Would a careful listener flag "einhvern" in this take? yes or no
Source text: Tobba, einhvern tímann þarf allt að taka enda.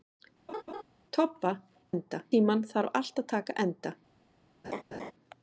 yes